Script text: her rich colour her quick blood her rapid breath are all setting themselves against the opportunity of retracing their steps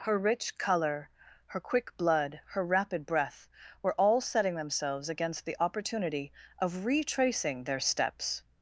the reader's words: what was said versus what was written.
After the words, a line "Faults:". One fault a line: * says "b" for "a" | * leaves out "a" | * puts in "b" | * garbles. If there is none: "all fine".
her rich colour her quick blood her rapid breath were all setting themselves against the opportunity of retracing their steps
Faults:
* says "were" for "are"